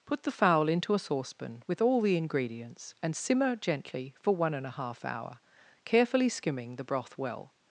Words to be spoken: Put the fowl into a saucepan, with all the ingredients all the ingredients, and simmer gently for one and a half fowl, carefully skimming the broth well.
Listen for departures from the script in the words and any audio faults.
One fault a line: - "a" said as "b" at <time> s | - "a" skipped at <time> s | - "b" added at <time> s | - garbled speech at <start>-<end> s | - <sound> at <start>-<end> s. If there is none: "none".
- "all the ingredients" skipped at 3.0 s
- "fowl" said as "hour" at 5.0 s